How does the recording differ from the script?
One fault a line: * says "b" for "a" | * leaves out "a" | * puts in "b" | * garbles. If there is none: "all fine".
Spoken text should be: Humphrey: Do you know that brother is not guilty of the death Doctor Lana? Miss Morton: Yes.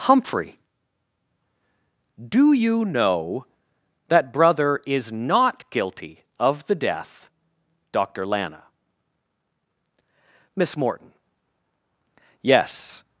all fine